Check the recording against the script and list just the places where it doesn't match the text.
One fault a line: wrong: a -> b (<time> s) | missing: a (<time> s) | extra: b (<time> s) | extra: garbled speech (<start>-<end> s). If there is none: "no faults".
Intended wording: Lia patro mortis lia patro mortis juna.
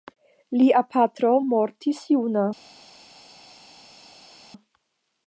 missing: lia patro mortis (2.0 s)